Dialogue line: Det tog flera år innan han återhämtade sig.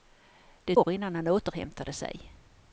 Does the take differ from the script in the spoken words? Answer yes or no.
yes